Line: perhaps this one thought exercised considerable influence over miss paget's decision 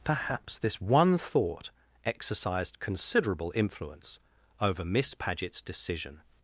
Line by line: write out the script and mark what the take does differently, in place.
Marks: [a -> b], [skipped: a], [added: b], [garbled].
perhaps this one thought exercised considerable influence over miss paget's decision